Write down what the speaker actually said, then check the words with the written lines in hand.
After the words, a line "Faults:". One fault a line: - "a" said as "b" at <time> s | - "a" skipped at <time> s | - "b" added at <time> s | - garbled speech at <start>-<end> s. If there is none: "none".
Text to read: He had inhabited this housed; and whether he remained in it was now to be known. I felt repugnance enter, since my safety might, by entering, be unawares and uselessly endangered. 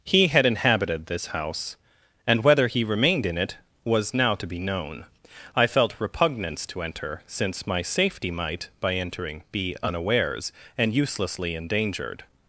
He had inhabited this house; and whether he remained in it was now to be known. I felt repugnance to enter, since my safety might, by entering, be unawares and uselessly endangered.
Faults:
- "housed" said as "house" at 1.3 s
- "to" added at 6.7 s